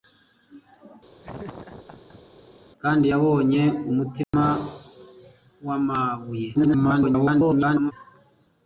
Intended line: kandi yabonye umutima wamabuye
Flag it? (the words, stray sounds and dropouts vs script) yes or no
yes